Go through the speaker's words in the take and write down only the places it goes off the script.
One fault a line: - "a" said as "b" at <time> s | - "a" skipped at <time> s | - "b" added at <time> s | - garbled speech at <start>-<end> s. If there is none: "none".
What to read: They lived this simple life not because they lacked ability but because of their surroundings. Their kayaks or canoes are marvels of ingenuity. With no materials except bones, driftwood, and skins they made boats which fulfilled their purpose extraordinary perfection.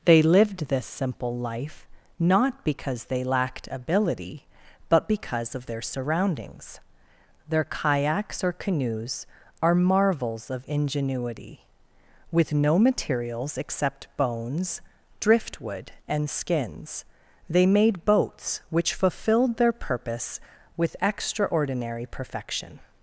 - "with" added at 20.8 s